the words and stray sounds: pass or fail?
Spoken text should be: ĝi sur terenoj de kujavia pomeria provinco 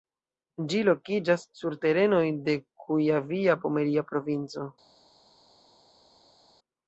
fail